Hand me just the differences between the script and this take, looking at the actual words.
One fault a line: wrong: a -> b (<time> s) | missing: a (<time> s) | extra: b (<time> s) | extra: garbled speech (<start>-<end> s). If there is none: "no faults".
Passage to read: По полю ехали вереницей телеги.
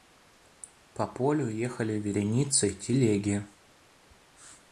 no faults